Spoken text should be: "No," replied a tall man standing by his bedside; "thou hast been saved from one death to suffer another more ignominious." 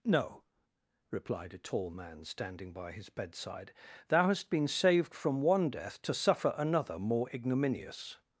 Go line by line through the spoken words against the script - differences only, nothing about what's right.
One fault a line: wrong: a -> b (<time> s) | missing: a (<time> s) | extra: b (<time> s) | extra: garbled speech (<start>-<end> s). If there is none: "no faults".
no faults